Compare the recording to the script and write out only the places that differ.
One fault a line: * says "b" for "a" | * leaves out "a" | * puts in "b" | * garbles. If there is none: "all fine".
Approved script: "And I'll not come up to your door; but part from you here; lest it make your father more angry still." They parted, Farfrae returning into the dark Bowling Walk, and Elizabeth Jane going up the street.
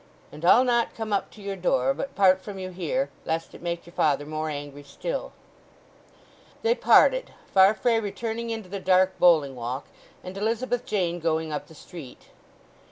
all fine